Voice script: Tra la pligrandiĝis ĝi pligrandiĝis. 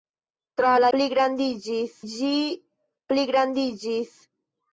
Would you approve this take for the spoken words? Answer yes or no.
yes